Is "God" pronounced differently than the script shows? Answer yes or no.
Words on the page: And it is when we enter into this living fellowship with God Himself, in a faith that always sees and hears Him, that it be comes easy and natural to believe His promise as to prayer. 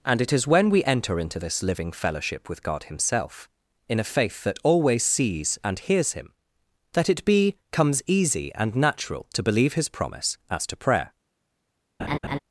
no